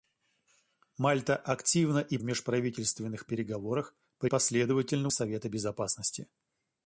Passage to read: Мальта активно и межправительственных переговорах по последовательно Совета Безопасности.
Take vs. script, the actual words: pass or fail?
pass